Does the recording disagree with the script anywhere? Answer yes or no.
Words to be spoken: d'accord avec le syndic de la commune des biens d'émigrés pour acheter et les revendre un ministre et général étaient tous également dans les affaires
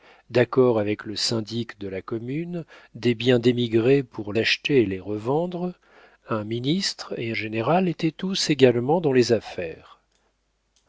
no